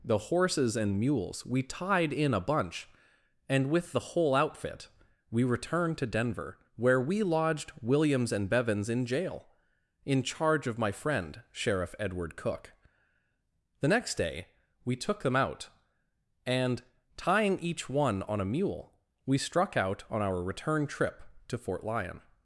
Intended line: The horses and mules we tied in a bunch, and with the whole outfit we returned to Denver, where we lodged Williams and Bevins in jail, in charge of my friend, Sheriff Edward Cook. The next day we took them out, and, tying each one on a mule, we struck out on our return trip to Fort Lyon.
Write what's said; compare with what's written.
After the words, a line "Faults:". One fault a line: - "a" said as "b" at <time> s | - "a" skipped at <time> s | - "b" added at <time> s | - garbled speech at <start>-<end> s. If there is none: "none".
The horses and mules we tied in a bunch, and with the whole outfit we returned to Denver, where we lodged Williams and Bevins in jail, in charge of my friend, Sheriff Edward Cook. The next day we took them out, and, tying each one on a mule, we struck out on our return trip to Fort Lyon.
Faults:
none